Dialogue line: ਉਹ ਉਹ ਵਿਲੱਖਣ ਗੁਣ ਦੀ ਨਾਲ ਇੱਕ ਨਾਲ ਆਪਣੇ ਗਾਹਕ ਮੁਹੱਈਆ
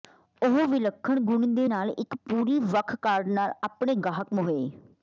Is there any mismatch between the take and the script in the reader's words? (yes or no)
yes